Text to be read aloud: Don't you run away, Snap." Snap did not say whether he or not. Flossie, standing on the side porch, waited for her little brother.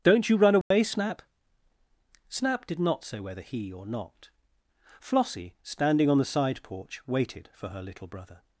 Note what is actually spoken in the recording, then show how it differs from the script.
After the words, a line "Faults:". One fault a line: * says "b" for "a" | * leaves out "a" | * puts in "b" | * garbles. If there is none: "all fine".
Don't you run away, Snap." Snap did not say whether he or not. Flossie, standing on the side porch, waited for her little brother.
Faults:
all fine